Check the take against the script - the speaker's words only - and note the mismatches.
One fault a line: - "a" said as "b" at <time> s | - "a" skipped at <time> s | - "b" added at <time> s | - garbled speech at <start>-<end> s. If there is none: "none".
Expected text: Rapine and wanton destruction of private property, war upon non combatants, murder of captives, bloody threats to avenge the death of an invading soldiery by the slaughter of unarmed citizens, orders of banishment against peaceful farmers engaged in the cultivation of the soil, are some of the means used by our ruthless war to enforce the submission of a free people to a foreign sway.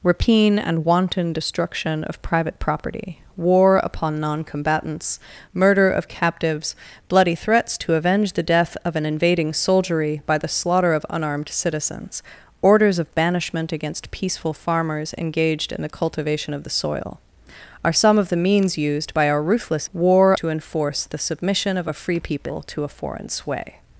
none